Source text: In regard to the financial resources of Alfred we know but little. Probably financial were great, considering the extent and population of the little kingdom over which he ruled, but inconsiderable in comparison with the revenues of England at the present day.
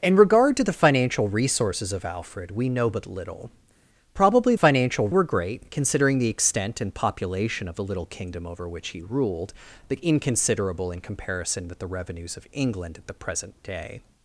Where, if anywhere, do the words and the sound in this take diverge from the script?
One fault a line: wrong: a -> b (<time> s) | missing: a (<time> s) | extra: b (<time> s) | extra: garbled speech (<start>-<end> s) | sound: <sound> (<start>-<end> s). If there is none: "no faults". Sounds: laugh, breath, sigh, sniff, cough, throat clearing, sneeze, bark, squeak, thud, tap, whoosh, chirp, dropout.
no faults